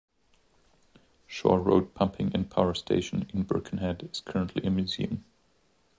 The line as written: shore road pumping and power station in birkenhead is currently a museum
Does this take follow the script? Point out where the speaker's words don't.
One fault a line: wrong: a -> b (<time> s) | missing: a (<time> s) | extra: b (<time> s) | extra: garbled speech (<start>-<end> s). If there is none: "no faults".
no faults